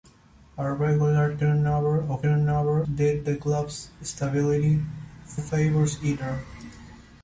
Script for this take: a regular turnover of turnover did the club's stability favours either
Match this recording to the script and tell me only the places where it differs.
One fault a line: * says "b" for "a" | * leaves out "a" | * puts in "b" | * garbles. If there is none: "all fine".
all fine